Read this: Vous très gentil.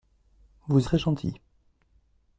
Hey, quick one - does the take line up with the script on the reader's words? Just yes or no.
yes